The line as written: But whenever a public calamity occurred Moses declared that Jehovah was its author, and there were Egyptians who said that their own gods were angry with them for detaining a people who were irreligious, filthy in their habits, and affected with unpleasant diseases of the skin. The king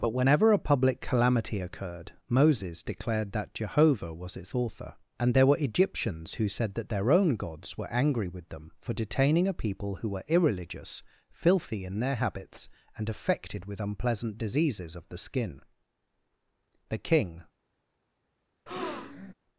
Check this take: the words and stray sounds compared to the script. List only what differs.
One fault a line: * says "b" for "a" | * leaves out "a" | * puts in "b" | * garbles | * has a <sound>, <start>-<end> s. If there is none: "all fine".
* has a breath, 18.7-19.3 s